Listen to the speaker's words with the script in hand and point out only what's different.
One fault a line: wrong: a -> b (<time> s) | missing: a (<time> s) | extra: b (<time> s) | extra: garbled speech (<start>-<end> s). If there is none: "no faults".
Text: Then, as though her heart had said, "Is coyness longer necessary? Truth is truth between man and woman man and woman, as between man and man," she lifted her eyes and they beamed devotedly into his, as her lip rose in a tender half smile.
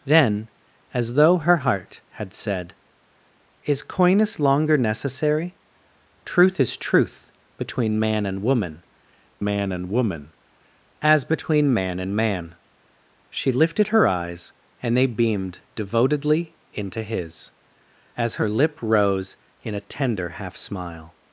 no faults